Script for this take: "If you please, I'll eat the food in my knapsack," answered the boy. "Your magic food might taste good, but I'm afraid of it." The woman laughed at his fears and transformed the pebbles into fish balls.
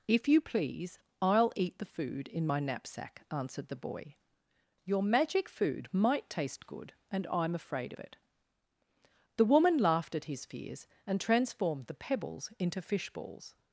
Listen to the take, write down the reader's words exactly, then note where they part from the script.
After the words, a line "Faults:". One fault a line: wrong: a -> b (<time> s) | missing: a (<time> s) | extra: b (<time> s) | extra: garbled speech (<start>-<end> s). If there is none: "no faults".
"If you please, I'll eat the food in my knapsack," answered the boy. "Your magic food might taste good, and I'm afraid of it." The woman laughed at his fears and transformed the pebbles into fish balls.
Faults:
wrong: but -> and (7.1 s)